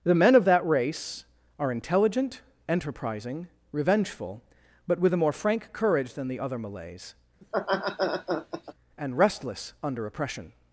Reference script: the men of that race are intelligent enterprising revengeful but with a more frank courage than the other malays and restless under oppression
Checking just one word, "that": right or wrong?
right